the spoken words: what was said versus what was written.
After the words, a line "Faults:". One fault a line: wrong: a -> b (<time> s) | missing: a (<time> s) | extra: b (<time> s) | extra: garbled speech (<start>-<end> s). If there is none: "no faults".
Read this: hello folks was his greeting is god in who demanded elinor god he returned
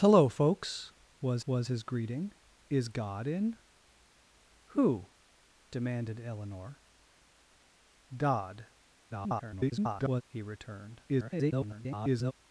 hello folks was was his greeting is god in who demanded elinor god [garbled] he returned [garbled]
Faults:
extra: was (1.5 s)
extra: garbled speech (9.1-10.2 s)
extra: garbled speech (11.1-12.3 s)